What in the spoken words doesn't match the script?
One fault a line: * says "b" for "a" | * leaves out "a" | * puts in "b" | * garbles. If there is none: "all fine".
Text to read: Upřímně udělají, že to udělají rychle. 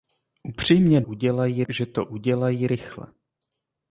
all fine